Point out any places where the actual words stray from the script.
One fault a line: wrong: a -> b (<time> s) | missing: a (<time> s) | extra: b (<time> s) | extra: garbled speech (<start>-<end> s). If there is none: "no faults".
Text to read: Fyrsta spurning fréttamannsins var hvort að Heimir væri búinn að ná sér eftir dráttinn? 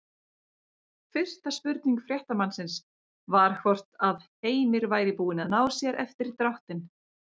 no faults